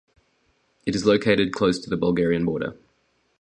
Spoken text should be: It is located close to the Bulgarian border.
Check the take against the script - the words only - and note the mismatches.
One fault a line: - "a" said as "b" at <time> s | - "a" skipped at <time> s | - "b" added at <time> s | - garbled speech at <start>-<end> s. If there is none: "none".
none